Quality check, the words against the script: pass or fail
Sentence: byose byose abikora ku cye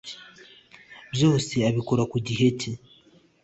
fail